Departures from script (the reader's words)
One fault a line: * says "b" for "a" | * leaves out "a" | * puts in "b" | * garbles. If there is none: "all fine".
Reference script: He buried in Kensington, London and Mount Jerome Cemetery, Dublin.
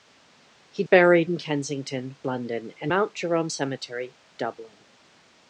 all fine